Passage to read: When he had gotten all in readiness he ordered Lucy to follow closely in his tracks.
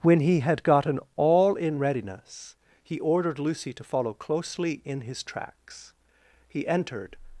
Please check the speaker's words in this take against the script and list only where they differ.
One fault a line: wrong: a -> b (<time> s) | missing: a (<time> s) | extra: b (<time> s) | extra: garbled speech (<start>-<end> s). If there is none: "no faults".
extra: He entered (6.5 s)